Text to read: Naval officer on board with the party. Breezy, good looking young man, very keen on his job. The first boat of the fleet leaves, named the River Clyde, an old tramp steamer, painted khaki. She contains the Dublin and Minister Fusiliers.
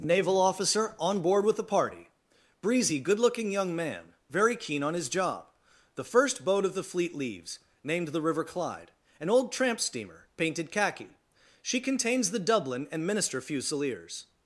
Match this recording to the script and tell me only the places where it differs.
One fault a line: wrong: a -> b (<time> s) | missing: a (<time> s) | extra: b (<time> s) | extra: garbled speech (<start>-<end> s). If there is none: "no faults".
no faults